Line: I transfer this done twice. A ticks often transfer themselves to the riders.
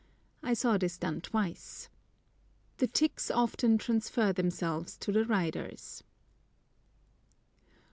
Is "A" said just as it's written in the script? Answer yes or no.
no